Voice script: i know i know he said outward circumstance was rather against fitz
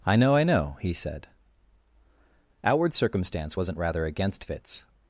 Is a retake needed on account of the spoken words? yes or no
yes